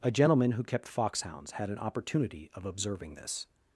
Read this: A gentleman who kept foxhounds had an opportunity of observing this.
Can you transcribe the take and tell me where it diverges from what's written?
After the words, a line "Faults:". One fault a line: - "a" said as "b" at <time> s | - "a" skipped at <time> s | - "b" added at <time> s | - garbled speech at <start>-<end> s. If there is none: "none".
A gentleman who kept foxhounds had an opportunity of observing this.
Faults:
none